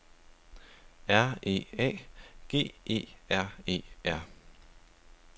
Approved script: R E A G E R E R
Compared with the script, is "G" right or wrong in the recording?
right